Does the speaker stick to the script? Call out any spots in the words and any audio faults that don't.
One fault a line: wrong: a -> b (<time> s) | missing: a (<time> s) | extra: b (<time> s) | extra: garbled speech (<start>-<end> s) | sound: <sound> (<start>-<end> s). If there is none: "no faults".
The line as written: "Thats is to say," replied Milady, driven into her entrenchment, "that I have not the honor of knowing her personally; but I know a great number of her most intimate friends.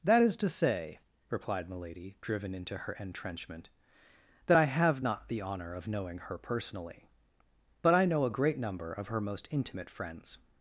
wrong: Thats -> That (0.0 s)